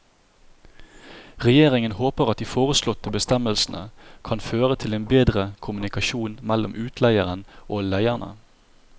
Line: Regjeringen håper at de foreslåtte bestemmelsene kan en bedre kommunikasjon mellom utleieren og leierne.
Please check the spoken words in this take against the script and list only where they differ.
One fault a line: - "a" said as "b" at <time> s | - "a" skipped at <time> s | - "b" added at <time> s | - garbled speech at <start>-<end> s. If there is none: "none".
- "føre til" added at 4.5 s